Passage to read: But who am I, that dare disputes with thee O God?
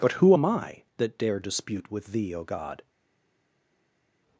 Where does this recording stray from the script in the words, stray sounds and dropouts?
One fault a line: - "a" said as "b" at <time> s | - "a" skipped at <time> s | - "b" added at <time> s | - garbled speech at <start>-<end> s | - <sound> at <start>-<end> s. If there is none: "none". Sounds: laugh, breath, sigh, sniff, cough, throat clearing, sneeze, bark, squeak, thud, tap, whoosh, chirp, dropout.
- "disputes" said as "dispute" at 1.4 s